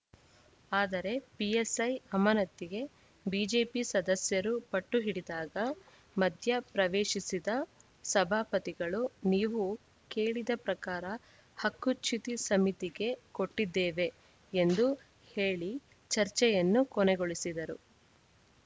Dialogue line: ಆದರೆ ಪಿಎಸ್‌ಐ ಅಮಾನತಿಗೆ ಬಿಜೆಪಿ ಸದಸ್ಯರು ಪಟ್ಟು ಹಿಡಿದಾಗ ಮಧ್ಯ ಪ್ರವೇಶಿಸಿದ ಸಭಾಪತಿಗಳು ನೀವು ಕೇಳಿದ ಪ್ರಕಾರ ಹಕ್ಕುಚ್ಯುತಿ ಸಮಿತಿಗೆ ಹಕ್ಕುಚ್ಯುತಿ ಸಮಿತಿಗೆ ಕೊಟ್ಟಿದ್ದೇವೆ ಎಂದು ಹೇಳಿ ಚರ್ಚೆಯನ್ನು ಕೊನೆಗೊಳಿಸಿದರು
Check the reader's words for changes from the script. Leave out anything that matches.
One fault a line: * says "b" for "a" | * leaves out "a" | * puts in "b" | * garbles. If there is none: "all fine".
* leaves out "ಹಕ್ಕುಚ್ಯುತಿ ಸಮಿತಿಗೆ"